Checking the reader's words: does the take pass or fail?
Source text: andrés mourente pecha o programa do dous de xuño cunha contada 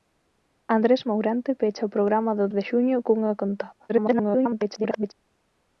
fail